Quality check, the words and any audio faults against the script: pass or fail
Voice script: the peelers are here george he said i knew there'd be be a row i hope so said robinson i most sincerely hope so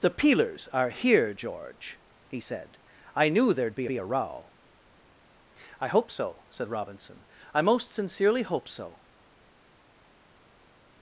pass